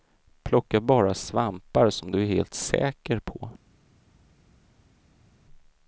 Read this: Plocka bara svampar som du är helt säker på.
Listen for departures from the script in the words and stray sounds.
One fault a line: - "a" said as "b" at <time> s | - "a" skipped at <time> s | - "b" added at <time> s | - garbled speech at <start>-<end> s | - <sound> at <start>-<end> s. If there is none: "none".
none